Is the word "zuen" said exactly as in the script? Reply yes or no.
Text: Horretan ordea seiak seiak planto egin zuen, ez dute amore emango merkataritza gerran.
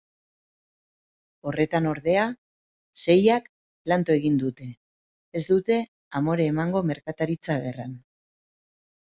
no